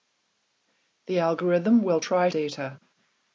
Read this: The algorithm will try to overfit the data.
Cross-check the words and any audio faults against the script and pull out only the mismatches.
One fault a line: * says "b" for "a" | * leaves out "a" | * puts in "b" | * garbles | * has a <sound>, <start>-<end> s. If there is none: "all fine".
* leaves out "to overfit the"